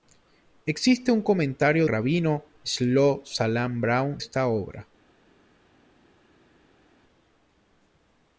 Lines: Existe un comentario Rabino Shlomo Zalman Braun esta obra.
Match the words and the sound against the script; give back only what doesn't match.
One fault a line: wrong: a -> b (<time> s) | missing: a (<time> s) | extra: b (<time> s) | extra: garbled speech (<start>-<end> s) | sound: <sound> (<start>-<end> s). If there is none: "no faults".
no faults